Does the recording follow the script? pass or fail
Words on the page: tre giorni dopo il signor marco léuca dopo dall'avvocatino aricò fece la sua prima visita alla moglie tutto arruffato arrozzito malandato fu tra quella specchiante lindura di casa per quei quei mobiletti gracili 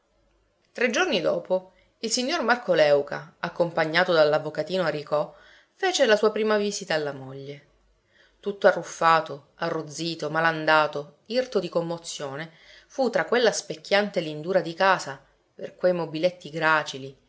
fail